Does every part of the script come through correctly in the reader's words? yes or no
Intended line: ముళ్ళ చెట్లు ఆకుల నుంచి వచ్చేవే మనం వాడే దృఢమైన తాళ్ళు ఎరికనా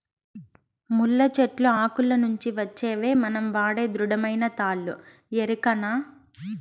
yes